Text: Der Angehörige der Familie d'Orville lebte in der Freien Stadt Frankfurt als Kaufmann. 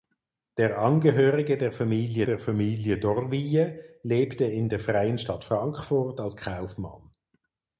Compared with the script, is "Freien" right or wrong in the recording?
right